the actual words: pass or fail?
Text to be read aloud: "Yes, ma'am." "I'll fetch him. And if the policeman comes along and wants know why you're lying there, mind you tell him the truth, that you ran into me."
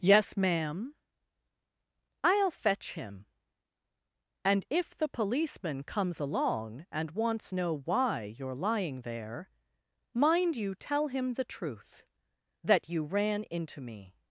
pass